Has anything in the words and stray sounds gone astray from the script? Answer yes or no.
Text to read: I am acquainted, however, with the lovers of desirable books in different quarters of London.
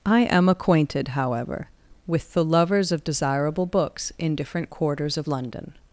no